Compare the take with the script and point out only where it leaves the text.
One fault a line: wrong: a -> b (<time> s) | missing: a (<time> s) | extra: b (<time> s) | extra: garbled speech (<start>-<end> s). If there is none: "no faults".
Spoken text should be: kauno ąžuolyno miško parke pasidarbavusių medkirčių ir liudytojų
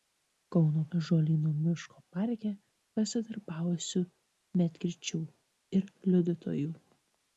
no faults